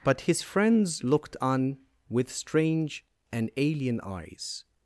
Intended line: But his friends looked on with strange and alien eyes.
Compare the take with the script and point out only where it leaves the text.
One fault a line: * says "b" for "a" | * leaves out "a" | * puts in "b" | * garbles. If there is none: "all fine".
all fine